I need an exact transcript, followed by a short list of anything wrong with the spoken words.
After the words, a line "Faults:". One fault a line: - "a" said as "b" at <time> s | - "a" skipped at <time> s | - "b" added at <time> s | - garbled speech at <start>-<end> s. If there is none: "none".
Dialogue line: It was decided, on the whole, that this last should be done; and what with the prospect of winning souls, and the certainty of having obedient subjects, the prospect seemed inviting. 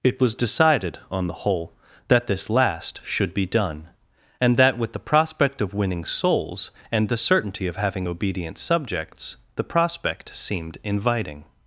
It was decided, on the whole, that this last should be done; and that with the prospect of winning souls, and the certainty of having obedient subjects, the prospect seemed inviting.
Faults:
- "what" said as "that" at 4.6 s